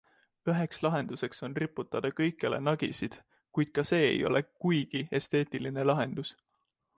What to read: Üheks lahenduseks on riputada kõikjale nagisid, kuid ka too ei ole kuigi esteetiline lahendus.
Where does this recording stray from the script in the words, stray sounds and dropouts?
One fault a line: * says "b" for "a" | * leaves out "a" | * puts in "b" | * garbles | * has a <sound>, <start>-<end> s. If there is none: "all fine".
* says "see" for "too"